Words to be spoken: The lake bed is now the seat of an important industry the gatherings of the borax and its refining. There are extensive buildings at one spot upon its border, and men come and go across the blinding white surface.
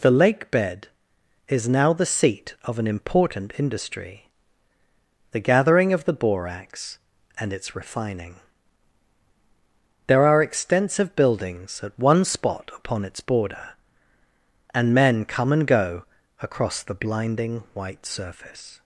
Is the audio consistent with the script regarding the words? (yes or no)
no